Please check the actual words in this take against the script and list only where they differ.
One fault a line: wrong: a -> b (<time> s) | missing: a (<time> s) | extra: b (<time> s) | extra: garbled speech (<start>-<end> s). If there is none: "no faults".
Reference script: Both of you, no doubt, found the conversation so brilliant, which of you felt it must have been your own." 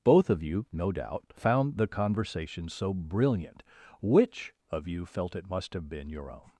no faults